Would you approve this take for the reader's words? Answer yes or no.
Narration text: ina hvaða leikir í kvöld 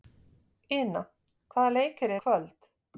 yes